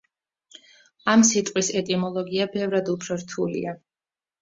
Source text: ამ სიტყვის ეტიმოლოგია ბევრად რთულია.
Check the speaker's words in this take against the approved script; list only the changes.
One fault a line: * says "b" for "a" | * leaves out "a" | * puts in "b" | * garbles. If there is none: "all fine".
* puts in "უფრო"